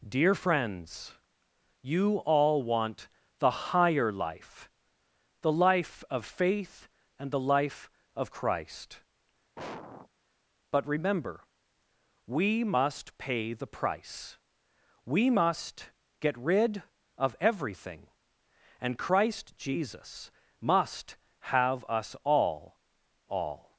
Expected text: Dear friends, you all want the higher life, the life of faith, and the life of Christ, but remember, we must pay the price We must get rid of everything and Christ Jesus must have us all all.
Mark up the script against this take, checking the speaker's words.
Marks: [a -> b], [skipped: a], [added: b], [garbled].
Dear friends, you all want the higher life, the life of faith, and the life of Christ, but remember, we must pay the price We must get rid of everything and Christ Jesus must have us all all.